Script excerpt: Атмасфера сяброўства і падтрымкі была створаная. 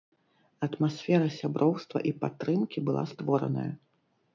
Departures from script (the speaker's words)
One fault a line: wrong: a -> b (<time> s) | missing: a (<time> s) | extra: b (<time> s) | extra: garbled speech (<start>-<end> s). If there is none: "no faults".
no faults